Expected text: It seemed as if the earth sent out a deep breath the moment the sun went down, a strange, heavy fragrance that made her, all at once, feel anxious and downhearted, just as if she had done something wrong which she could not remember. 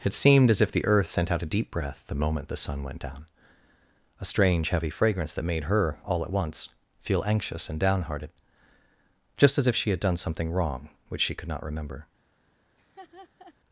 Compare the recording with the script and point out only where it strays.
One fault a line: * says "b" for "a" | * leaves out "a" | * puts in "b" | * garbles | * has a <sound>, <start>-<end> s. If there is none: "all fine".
* has a laugh, 12.8-13.5 s